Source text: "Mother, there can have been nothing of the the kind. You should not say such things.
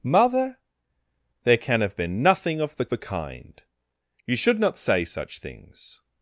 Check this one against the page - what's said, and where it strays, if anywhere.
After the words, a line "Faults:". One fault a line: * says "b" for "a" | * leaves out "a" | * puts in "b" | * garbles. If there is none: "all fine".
"Mother, there can have been nothing of the the kind. You should not say such things.
Faults:
all fine